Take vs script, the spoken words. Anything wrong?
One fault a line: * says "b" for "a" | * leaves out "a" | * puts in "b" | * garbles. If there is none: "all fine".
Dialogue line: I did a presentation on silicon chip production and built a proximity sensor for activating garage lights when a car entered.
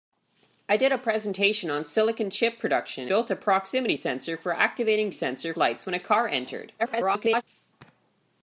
* leaves out "and"
* says "sensor" for "garage"
* garbles